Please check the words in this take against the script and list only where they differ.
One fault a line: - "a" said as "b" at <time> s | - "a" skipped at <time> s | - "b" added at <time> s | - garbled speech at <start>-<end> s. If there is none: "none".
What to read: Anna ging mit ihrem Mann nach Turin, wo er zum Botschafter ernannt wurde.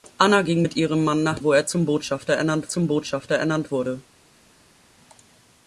- "Turin" skipped at 1.4 s
- "zum Botschafter ernannt" added at 2.7 s